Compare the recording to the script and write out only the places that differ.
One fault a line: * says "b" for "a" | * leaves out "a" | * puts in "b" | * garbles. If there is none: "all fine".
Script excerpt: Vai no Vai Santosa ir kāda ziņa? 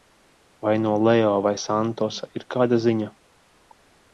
* puts in "Leo"